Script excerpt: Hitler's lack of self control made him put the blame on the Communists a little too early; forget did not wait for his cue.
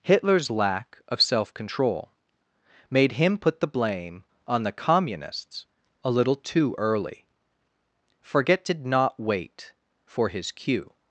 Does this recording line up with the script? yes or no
yes